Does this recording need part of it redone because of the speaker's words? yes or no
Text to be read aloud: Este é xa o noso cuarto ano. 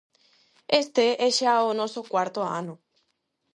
no